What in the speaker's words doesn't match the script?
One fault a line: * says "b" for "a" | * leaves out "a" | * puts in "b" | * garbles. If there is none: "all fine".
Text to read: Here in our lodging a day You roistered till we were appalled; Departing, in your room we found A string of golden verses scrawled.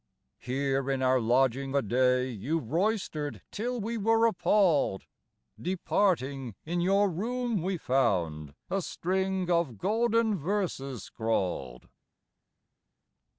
all fine